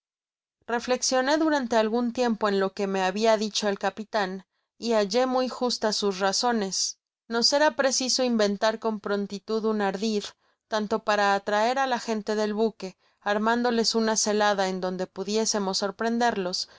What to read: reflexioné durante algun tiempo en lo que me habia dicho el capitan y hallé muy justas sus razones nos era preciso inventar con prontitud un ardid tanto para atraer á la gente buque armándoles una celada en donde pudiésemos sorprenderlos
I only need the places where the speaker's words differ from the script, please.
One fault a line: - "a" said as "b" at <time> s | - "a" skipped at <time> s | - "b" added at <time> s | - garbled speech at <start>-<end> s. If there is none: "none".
- "del" added at 12.3 s